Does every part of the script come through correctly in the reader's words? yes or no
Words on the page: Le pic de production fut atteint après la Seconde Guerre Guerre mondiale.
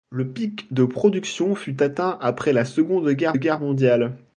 yes